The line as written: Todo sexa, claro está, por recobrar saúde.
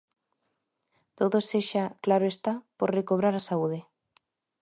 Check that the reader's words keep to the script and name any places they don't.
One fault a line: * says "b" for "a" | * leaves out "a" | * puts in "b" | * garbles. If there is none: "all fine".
* puts in "a"